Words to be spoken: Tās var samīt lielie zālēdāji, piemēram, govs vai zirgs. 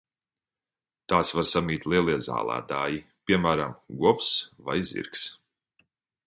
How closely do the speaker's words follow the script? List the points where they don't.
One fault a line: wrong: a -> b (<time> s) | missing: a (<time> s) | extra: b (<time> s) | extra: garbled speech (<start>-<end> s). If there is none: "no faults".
no faults